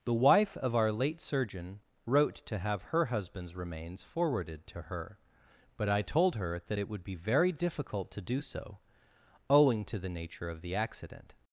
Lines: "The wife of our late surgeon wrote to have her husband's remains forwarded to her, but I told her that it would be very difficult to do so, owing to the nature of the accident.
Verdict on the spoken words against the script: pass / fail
pass